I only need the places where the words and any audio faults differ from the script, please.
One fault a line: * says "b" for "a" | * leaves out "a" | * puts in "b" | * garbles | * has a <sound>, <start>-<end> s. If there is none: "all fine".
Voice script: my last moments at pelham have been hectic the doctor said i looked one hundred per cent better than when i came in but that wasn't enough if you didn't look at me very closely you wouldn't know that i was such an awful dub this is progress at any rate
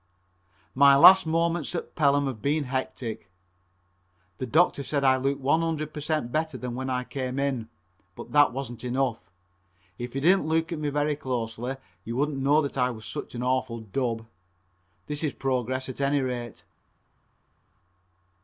all fine